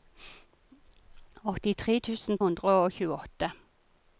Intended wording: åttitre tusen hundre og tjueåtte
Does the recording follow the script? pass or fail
pass